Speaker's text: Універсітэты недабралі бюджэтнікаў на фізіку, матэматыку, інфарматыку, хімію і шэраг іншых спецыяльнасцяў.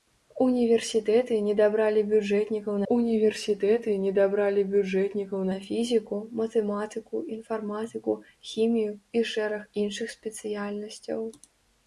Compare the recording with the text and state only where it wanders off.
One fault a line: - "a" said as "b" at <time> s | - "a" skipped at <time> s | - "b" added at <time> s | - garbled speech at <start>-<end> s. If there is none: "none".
- "універсітэты недабралі бюджэтнікаў" added at 2.9 s